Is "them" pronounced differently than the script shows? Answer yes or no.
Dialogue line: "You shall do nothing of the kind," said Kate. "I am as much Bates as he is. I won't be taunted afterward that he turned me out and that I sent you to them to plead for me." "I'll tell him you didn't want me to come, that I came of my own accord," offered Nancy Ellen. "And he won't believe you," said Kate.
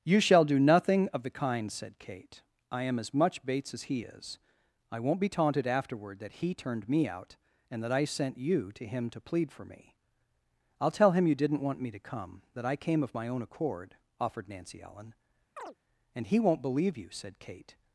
yes